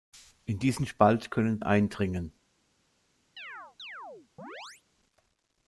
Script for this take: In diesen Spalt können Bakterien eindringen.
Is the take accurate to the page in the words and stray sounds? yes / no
no